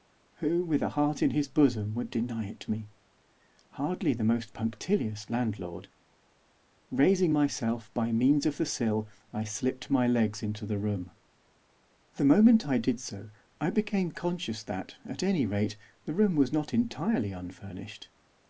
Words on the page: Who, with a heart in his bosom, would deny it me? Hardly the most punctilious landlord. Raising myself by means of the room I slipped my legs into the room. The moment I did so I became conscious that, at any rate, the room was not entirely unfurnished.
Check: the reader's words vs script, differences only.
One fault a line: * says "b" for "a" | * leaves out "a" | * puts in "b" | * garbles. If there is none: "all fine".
* says "sill" for "room"